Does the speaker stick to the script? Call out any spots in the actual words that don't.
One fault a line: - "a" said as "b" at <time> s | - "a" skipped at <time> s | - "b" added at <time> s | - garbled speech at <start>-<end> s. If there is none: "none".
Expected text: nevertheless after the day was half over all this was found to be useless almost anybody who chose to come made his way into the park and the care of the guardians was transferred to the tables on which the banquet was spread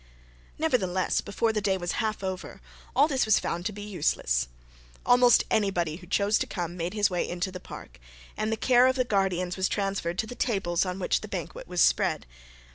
- "after" said as "before" at 1.2 s